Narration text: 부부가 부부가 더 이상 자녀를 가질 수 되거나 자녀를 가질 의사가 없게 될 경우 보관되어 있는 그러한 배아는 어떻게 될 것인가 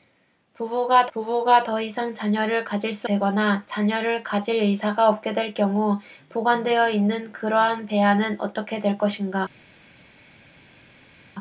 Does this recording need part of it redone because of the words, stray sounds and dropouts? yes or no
no